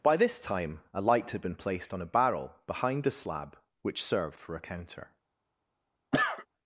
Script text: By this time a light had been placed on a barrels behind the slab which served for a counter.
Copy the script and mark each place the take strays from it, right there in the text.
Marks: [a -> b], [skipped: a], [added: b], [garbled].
By this time a light had been placed on a [barrels -> barrel] behind the slab which served for a counter.